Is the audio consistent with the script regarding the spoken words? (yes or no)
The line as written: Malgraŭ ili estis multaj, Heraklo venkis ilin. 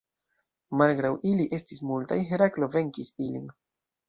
yes